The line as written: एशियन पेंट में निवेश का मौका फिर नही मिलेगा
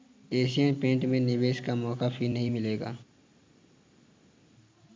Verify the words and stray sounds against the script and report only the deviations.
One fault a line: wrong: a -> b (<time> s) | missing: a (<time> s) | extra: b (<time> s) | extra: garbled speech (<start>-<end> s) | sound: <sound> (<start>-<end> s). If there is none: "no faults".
no faults